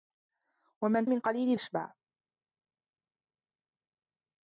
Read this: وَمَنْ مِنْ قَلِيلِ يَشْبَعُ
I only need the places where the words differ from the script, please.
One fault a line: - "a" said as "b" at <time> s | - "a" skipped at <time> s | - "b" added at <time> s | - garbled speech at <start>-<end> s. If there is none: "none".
none